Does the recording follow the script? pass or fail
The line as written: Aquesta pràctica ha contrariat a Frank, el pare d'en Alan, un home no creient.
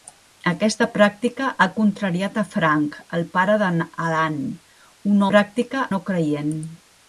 fail